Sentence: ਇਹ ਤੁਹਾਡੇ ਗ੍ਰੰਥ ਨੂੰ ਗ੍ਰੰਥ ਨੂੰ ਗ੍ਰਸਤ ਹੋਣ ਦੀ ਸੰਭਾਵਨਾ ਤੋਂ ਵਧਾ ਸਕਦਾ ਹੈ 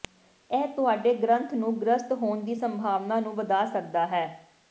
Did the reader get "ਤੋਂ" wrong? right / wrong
wrong